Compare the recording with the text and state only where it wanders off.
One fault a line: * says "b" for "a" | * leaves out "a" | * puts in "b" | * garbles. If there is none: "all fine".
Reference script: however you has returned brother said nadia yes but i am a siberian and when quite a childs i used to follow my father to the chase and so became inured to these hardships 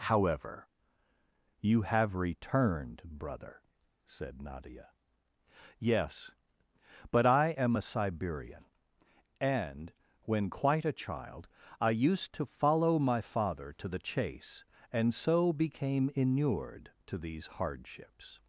* says "have" for "has"
* says "child" for "childs"